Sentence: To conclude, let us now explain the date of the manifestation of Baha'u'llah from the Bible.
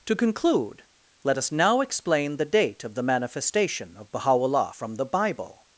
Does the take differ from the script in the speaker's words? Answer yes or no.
no